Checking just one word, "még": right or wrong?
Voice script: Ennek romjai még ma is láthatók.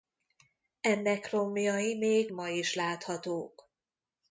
right